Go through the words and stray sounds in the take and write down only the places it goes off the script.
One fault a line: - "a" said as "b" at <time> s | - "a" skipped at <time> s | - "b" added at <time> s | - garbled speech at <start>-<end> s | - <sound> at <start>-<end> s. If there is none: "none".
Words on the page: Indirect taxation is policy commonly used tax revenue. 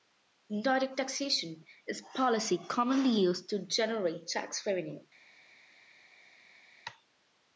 - "to generate" added at 3.5 s